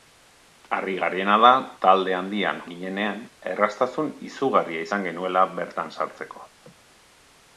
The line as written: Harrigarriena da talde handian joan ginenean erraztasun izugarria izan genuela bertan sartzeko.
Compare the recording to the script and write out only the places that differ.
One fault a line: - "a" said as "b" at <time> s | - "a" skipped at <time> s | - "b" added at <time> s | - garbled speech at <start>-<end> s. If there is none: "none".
- "joan" skipped at 2.6 s